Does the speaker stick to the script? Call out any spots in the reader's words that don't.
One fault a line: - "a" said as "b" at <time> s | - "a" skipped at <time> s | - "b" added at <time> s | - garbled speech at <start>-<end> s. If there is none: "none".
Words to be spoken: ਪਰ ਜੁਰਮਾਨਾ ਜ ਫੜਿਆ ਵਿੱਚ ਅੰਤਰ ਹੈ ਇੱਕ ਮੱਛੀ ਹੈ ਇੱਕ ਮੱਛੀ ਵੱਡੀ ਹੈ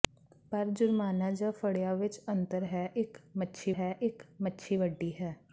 none